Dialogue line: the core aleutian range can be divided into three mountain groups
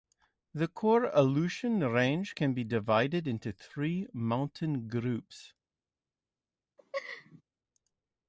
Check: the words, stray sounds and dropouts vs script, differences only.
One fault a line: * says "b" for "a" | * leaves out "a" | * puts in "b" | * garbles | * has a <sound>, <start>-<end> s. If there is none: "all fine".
* has a laugh, 6.8-7.4 s